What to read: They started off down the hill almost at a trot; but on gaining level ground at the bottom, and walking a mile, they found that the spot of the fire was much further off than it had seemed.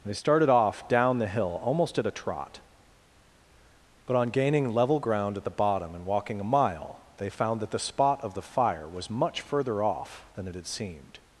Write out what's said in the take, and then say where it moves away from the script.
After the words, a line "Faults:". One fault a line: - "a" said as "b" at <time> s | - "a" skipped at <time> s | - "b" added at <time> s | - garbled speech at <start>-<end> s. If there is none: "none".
They started off down the hill almost at a trot; but on gaining level ground at the bottom, and walking a mile, they found that the spot of the fire was much further off than it had seemed.
Faults:
none